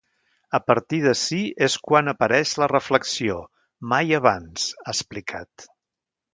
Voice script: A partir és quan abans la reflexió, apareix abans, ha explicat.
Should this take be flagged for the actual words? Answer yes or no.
yes